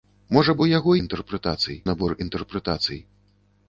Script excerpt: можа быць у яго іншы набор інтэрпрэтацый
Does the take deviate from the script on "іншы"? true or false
true